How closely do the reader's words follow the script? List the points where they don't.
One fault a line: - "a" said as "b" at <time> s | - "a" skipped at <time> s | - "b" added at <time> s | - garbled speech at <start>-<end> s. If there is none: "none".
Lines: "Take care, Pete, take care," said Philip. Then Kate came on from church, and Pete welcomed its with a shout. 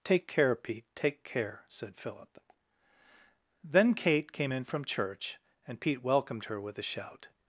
- "on" said as "in" at 4.5 s
- "its" said as "her" at 6.5 s